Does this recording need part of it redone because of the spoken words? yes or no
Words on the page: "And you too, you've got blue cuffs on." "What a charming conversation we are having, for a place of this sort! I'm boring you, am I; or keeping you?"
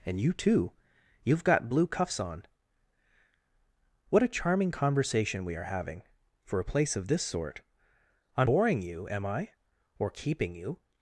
no